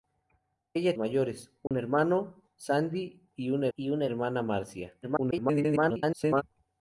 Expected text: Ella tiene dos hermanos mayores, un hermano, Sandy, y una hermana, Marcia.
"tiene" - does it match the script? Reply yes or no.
no